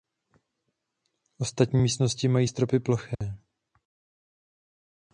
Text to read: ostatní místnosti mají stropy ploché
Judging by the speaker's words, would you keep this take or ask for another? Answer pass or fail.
pass